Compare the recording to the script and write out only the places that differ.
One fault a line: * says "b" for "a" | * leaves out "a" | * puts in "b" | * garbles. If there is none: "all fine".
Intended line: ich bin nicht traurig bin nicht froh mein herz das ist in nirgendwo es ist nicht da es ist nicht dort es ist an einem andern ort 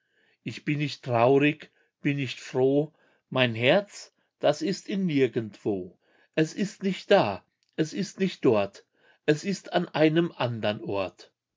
all fine